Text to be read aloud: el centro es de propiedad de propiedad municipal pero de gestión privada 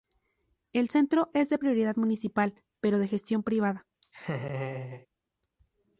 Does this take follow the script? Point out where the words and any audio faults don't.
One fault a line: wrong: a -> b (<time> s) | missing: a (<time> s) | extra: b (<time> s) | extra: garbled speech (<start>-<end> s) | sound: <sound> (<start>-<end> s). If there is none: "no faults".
missing: de propiedad (2.0 s)
sound: laugh (4.0-5.1 s)